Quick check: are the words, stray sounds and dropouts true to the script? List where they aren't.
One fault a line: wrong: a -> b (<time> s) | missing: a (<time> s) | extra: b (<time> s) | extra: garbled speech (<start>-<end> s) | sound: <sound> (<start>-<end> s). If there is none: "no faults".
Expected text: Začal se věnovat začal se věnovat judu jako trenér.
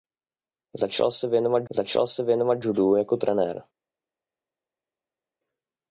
no faults